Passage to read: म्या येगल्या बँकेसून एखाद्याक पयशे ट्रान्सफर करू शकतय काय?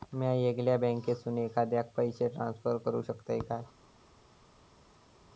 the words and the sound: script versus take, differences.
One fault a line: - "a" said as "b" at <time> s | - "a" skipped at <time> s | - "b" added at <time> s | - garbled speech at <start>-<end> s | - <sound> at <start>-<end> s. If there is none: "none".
none